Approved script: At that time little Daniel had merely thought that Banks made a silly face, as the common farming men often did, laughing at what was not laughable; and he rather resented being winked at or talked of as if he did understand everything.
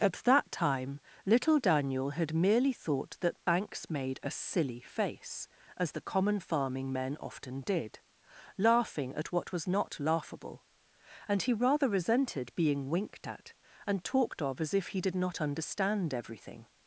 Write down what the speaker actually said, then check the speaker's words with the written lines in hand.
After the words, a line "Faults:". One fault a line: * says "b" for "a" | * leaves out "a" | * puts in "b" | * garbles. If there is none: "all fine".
At that time little Daniel had merely thought that Banks made a silly face, as the common farming men often did, laughing at what was not laughable; and he rather resented being winked at and talked of as if he did not understand everything.
Faults:
* says "and" for "or"
* puts in "not"